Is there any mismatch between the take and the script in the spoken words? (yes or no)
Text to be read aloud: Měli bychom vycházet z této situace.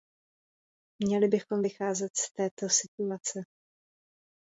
no